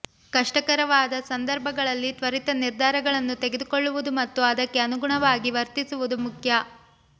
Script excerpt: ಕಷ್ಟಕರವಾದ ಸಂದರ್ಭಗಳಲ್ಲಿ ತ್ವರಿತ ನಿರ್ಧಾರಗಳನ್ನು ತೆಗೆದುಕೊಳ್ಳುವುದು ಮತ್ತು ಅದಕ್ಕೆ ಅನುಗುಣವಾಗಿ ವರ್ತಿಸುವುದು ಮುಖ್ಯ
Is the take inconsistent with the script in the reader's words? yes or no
no